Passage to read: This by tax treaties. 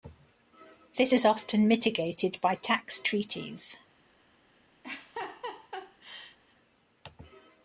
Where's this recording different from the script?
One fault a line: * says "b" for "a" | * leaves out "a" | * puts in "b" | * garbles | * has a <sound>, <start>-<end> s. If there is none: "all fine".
* puts in "is often mitigated"
* has a laugh, 4.8-6.4 s